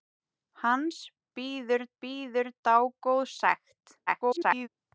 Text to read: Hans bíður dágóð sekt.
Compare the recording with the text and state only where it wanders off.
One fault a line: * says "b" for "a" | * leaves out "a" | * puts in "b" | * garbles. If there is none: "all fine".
* puts in "bíður"
* garbles